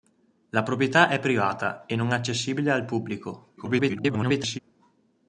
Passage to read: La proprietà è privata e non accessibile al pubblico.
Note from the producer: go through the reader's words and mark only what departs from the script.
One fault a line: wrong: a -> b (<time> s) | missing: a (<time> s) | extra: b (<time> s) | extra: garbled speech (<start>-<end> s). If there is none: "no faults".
extra: garbled speech (3.6-4.6 s)